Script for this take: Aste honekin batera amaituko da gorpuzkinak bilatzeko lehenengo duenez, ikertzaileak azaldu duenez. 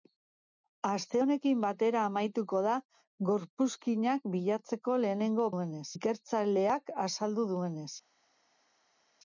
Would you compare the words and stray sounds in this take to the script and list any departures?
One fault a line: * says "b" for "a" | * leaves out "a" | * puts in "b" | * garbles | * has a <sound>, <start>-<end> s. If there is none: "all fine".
all fine